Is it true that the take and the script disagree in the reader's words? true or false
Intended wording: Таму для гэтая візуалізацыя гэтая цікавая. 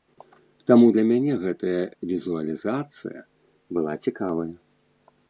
true